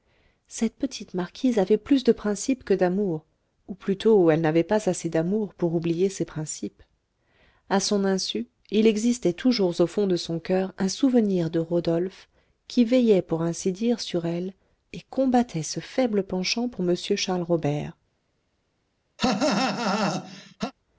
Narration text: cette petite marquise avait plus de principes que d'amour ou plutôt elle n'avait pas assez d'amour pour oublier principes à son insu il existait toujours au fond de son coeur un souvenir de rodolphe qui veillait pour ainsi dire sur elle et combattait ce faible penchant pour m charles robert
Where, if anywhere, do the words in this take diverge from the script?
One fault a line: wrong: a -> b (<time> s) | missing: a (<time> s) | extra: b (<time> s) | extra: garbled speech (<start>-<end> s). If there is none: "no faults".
extra: ses (6.1 s)